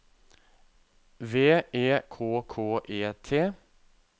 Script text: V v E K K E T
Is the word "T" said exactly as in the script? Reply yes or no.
yes